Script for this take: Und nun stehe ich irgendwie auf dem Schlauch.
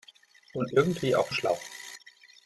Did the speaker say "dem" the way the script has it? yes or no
no